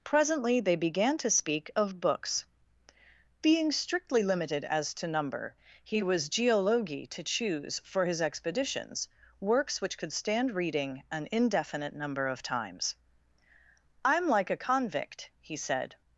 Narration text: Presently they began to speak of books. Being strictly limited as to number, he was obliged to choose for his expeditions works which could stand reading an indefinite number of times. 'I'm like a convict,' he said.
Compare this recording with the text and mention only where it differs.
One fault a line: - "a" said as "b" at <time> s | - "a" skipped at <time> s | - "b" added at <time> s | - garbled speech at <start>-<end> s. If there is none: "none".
- "obliged" said as "geologi" at 6.3 s